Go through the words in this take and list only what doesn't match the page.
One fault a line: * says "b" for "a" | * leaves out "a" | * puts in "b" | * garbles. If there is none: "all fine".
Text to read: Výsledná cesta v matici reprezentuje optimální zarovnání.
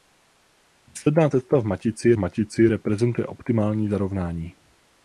* puts in "matici"